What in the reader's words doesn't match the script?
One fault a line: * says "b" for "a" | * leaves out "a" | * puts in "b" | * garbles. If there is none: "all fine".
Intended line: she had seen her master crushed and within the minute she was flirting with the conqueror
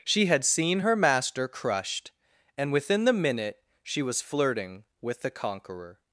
all fine